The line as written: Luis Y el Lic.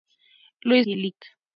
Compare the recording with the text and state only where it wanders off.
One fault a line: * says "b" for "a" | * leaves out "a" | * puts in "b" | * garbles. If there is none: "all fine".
all fine